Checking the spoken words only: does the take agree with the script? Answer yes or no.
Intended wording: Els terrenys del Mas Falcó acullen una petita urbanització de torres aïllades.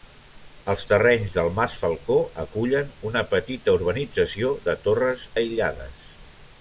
yes